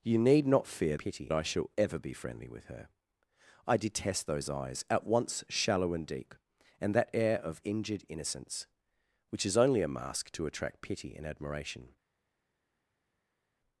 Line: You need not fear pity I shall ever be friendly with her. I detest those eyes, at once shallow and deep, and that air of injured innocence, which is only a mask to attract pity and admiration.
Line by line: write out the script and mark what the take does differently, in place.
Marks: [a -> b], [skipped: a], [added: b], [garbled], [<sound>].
You need not fear pity I shall ever be friendly with her. I detest those eyes, at once shallow and deep, and that air of injured innocence, which is only a mask to attract pity and admiration.